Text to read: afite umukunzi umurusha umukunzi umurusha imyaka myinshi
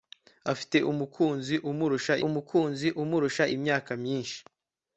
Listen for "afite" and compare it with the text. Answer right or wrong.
right